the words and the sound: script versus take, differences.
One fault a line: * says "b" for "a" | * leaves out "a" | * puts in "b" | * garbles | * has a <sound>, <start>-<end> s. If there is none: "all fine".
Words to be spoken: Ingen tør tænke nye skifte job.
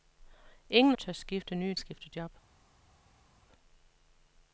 all fine